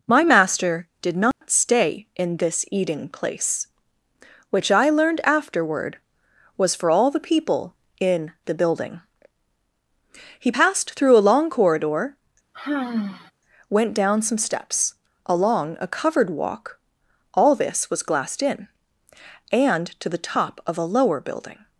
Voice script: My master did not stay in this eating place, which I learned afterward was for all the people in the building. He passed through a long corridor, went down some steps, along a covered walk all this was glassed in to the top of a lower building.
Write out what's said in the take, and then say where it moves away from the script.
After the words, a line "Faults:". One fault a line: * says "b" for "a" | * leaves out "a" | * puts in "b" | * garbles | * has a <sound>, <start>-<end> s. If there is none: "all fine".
My master did not stay in this eating place, which I learned afterward was for all the people in the building. He passed through a long corridor, went down some steps, along a covered walk all this was glassed in and to the top of a lower building.
Faults:
* has a dropout, 1.3-1.4 s
* has a sigh, 12.5-13.3 s
* puts in "and"